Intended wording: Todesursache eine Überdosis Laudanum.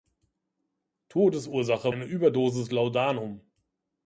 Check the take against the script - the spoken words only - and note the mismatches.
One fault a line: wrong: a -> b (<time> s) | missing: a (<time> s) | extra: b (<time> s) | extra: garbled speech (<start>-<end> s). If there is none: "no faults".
no faults